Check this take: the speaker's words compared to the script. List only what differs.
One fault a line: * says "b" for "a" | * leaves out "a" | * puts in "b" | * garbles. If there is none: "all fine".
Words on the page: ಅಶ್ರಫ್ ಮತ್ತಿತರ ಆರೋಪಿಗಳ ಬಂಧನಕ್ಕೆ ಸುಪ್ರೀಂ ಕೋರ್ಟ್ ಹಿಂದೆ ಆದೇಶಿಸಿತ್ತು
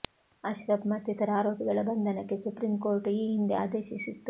* puts in "ಈ"